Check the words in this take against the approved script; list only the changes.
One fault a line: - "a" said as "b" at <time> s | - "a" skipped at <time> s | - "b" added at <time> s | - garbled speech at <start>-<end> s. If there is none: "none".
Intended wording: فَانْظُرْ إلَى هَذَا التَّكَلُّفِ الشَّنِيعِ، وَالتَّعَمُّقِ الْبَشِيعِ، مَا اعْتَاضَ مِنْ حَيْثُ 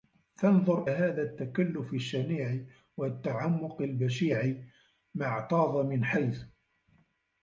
- "إلَى" skipped at 0.8 s